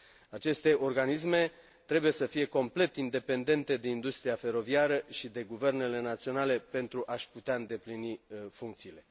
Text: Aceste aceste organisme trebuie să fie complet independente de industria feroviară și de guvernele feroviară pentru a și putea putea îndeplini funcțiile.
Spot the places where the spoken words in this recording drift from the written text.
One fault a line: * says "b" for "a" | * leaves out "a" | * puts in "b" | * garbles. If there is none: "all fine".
* leaves out "aceste"
* says "naționale" for "feroviară"
* leaves out "putea"